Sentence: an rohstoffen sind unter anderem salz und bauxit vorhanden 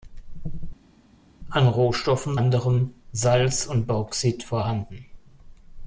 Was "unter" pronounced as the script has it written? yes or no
no